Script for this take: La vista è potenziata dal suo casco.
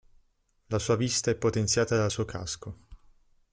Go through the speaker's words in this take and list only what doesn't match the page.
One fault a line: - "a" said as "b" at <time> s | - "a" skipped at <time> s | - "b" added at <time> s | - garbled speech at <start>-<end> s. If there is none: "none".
- "sua" added at 0.8 s